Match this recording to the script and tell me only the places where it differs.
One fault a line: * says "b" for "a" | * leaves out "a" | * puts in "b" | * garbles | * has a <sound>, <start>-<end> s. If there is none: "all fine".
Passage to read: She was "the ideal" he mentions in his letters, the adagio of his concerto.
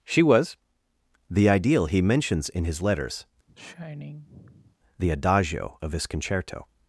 * has a sigh, 3.5-4.8 s